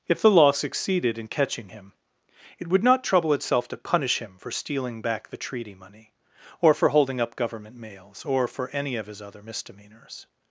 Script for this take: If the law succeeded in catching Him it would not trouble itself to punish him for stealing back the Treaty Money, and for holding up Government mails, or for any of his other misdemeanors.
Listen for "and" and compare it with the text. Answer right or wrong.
wrong